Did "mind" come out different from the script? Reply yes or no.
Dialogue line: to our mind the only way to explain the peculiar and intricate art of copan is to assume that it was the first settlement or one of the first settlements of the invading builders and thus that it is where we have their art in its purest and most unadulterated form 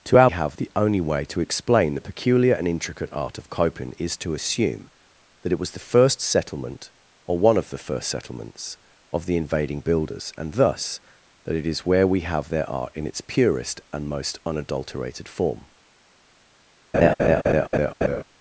yes